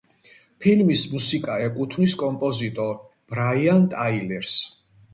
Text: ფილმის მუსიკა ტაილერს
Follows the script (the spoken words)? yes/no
no